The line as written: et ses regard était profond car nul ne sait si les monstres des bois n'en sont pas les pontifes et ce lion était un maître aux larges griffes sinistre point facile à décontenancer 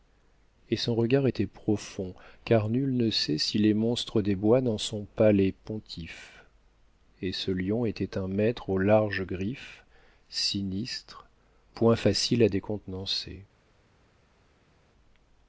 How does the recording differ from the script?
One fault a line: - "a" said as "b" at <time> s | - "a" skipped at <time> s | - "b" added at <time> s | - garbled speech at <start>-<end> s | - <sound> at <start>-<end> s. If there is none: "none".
- "ses" said as "son" at 0.8 s